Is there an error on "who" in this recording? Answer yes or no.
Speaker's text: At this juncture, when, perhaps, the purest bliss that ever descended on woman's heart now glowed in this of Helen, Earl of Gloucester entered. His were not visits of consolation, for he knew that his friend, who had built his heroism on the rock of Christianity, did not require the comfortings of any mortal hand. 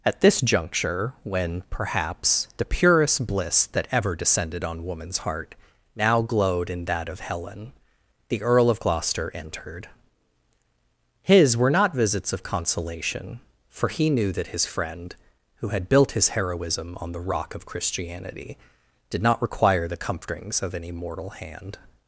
no